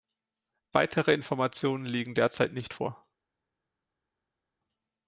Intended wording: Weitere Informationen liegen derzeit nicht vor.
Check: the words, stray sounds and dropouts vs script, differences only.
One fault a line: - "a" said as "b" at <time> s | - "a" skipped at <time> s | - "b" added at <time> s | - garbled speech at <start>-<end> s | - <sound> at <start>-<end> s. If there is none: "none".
none